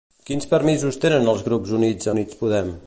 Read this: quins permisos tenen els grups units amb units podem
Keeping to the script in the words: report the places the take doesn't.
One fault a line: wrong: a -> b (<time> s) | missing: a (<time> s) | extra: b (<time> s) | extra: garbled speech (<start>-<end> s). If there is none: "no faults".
missing: amb (2.1 s)